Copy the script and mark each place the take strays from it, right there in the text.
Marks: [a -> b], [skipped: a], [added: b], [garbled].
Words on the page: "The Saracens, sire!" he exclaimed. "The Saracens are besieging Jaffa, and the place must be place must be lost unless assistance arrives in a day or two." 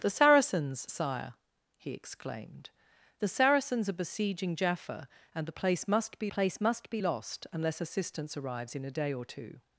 "The Saracens, sire!" he exclaimed. "The Saracens are besieging Jaffa, and the place must be place must be lost unless assistance arrives in a day or two."